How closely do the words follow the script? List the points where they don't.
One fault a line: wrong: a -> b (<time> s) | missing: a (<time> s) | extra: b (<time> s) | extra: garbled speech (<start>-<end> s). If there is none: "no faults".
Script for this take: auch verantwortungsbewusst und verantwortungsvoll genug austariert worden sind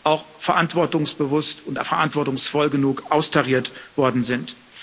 no faults